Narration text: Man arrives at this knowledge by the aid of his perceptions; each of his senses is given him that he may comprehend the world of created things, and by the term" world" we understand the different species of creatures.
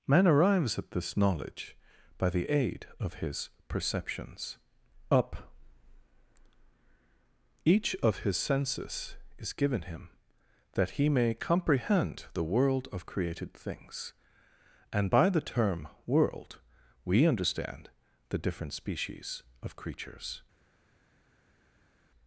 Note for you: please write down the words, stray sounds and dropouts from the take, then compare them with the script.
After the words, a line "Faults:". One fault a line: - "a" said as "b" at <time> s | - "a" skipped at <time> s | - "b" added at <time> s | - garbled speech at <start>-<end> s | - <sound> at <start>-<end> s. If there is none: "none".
Man arrives at this knowledge by the aid of his perceptions; up each of his senses is given him that he may comprehend the world of created things, and by the term" world" we understand the different species of creatures.
Faults:
- "up" added at 5.1 s